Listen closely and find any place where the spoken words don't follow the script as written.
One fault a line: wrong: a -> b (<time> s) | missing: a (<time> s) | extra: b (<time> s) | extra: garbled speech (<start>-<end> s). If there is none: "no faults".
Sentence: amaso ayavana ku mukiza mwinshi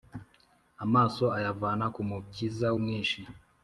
no faults